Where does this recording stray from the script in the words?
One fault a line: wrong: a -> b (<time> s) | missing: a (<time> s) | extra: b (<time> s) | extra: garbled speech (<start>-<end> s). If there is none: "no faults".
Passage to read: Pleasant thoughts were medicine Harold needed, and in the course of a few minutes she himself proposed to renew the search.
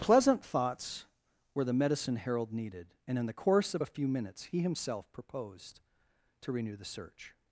extra: the (1.6 s)
wrong: she -> he (4.4 s)